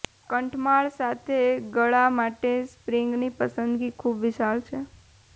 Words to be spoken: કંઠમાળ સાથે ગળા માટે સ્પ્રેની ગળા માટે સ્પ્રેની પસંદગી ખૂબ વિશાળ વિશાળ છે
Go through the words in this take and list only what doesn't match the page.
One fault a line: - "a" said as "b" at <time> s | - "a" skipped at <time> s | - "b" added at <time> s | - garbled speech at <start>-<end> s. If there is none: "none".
- "ગળા માટે સ્પ્રેની" skipped at 3.3 s
- "વિશાળ" skipped at 4.6 s